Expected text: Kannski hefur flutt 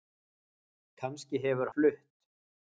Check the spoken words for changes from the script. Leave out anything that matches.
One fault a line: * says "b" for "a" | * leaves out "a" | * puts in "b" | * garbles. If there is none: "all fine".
all fine